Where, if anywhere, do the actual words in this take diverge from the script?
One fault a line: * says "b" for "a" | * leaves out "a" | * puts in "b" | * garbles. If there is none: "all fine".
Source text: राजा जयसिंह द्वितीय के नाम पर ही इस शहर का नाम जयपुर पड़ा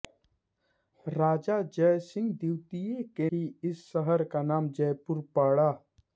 * leaves out "नाम पर"